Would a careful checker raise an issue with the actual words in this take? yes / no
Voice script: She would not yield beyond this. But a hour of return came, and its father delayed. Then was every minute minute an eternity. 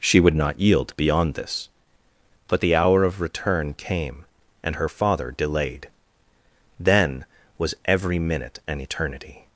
yes